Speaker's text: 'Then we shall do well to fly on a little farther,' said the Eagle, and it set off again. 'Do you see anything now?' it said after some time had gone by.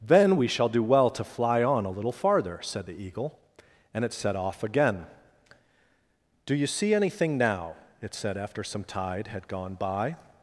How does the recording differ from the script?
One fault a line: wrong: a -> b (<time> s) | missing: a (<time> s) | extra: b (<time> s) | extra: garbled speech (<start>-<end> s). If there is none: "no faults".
wrong: time -> tide (8.8 s)